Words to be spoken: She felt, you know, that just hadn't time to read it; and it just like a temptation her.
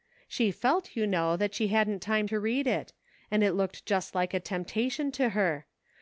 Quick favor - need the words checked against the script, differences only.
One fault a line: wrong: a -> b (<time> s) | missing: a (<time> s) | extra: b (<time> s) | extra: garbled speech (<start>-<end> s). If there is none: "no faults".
wrong: just -> she (1.5 s)
extra: looked (3.5 s)
extra: to (5.1 s)